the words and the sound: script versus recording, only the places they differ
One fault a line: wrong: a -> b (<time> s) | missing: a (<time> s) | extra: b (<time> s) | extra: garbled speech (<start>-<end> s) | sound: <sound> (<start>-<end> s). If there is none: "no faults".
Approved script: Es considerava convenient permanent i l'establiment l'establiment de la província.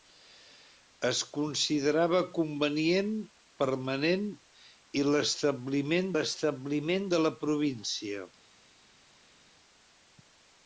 no faults